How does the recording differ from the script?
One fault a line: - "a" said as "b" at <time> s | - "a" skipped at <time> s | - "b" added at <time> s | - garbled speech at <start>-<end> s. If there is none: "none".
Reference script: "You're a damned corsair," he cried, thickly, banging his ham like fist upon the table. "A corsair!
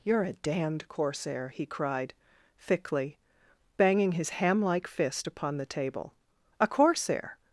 none